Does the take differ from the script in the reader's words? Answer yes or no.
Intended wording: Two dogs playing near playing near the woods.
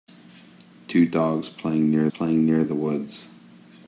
no